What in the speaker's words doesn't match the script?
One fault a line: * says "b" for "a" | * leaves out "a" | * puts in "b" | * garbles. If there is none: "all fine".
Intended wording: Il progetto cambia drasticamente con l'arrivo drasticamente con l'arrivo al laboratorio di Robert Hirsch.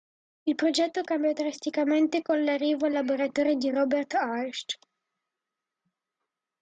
* leaves out "drasticamente con l'arrivo"